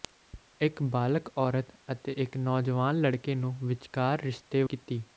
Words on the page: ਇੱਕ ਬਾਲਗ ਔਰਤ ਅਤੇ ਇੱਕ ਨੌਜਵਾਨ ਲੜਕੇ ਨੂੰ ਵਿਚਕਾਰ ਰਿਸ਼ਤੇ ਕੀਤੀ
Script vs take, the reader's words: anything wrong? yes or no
no